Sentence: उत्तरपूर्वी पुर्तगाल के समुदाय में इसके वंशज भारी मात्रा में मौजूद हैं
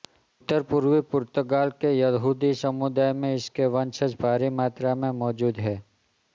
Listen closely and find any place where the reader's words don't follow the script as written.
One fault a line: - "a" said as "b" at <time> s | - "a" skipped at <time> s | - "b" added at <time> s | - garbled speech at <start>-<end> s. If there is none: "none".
- "यहूदी" added at 1.9 s